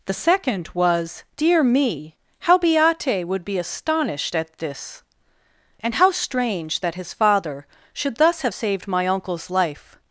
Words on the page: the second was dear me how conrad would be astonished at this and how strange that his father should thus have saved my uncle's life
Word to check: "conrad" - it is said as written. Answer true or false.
false